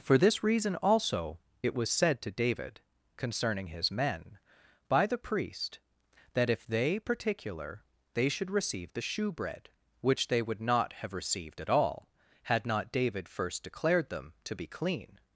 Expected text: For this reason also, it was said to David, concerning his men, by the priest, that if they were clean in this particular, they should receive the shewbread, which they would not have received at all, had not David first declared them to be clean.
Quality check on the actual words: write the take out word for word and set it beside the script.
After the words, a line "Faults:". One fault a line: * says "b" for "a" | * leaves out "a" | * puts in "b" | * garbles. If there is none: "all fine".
For this reason also, it was said to David, concerning his men, by the priest, that if they particular, they should receive the shewbread, which they would not have received at all, had not David first declared them to be clean.
Faults:
* leaves out "were clean in this"